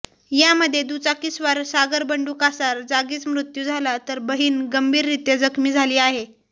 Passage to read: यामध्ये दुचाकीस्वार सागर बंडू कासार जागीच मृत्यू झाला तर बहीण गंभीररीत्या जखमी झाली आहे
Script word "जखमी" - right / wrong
right